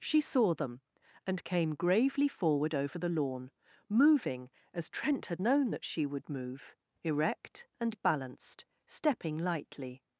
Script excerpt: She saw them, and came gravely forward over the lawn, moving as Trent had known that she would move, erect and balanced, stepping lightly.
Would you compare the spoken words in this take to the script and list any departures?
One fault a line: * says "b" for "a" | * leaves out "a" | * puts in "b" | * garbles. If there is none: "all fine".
all fine